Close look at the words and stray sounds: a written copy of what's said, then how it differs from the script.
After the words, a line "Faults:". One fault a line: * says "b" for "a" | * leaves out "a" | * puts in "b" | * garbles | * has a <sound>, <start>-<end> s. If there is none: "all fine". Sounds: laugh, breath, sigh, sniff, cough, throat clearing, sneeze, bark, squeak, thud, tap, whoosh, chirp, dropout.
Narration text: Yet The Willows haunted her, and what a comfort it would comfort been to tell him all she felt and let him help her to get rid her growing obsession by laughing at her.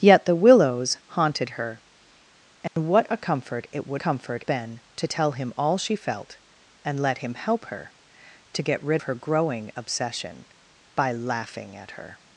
Yet The Willows haunted her, and what a comfort it would comfort been to tell him all she felt and let him help her to get rid her growing obsession by laughing at her.
Faults:
* has a dropout, 2.7-2.8 s